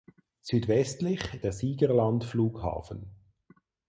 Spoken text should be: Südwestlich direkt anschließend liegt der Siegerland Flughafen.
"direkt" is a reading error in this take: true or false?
true